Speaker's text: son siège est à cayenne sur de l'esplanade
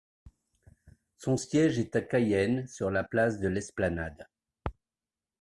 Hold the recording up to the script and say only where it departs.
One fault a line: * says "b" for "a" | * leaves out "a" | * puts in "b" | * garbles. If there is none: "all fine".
* puts in "la place"